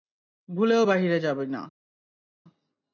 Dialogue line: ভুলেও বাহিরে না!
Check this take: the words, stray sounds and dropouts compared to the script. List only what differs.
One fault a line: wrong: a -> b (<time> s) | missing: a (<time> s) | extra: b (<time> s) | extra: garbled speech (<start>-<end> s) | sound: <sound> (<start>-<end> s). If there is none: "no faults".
extra: যাবি (1.2 s)